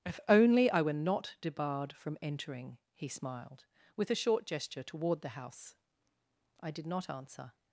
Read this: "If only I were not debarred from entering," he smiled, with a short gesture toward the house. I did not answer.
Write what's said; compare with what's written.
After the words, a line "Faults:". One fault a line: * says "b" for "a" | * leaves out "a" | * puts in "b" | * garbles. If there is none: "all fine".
"If only I were not debarred from entering," he smiled, with a short gesture toward the house. I did not answer.
Faults:
all fine